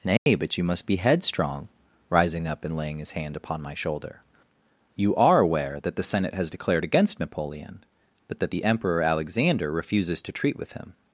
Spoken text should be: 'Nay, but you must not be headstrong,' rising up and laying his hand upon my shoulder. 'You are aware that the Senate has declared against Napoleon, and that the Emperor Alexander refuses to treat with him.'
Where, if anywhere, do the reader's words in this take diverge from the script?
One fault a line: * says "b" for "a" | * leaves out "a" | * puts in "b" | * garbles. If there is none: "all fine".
* leaves out "not"
* says "but" for "and"